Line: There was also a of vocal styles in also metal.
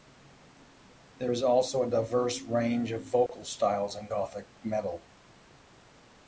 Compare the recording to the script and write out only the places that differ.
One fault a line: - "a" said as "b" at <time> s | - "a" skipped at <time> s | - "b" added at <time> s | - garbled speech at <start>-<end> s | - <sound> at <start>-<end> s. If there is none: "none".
- "was" said as "is" at 1.3 s
- "diverse range" added at 1.9 s
- dropout at 3.3-3.3 s
- "also" said as "gothic" at 4.1 s